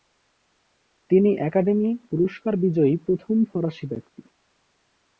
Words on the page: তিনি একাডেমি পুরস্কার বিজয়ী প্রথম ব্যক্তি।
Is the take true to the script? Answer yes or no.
no